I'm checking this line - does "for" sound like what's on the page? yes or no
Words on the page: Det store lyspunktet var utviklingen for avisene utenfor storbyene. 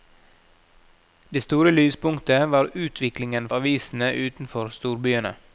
no